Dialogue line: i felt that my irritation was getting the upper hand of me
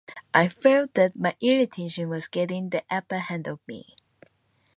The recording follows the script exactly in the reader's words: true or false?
true